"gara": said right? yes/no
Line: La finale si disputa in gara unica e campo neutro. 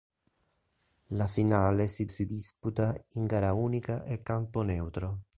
yes